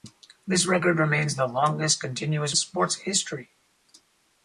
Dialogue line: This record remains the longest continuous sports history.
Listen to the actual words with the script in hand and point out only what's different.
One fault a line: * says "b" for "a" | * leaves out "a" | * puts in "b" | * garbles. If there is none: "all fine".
all fine